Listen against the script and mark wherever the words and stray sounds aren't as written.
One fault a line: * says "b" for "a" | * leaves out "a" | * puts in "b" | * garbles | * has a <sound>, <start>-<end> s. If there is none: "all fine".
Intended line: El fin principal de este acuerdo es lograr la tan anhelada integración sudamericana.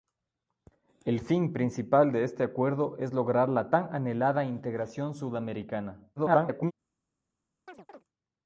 * garbles
* has a chirp, 7.7-8.0 s